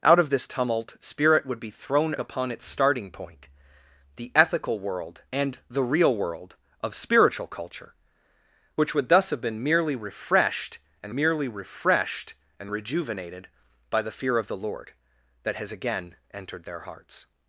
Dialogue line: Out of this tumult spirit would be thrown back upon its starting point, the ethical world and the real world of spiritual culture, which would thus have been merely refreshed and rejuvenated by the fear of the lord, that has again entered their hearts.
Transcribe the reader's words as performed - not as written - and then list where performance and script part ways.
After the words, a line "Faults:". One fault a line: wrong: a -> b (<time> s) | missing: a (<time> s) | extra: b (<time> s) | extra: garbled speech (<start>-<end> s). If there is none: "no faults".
Out of this tumult spirit would be thrown upon its starting point, the ethical world and the real world of spiritual culture, which would thus have been merely refreshed and merely refreshed and rejuvenated by the fear of the lord, that has again entered their hearts.
Faults:
missing: back (2.1 s)
extra: merely refreshed and (11.1 s)